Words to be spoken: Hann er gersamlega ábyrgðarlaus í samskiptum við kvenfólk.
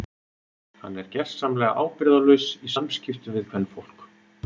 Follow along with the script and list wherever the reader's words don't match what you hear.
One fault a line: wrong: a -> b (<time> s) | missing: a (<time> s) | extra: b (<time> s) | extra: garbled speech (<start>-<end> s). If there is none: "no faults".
no faults